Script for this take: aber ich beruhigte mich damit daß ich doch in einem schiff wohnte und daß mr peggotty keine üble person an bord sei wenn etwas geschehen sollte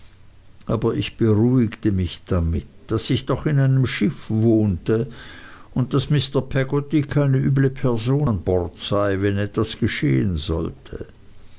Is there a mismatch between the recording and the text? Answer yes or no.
no